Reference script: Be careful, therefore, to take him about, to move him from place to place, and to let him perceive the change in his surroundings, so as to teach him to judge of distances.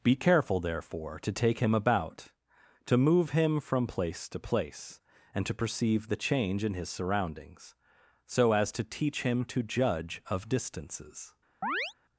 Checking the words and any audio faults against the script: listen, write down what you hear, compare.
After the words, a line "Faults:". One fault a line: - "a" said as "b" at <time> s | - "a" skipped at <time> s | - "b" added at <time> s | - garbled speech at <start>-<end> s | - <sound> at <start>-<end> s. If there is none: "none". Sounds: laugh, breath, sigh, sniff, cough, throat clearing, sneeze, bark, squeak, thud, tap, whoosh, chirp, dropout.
Be careful, therefore, to take him about, to move him from place to place, and to perceive the change in his surroundings, so as to teach him to judge of distances.
Faults:
- "let him" skipped at 5.5 s
- chirp at 11.6-11.9 s